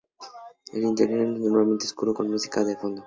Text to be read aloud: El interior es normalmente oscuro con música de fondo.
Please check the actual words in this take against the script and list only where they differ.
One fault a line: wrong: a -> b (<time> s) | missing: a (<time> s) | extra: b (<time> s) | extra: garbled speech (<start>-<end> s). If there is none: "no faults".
no faults